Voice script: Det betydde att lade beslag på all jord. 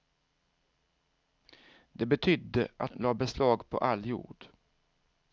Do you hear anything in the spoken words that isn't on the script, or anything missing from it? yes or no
no